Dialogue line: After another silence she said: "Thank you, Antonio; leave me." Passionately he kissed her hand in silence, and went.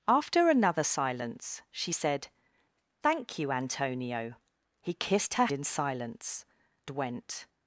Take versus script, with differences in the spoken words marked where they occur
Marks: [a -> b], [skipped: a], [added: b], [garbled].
After another silence she said: "Thank you, Antonio; [skipped: leave me." Passionately] he kissed her [skipped: hand] in silence, [skipped: and] went.